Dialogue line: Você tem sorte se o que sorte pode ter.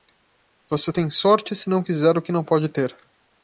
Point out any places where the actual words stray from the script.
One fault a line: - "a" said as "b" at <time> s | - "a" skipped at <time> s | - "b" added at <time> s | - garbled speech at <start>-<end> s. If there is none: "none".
- "não quiser" added at 1.7 s
- "sorte" said as "não" at 2.3 s